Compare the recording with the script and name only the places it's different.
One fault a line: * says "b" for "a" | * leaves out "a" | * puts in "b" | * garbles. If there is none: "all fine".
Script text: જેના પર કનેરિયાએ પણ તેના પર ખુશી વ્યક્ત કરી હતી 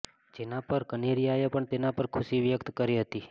all fine